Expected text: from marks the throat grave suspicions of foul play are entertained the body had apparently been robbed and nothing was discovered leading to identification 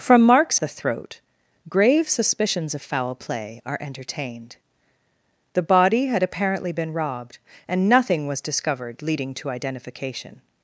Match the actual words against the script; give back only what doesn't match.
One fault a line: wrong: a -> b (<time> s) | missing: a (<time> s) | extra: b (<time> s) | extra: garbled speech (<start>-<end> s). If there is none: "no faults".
no faults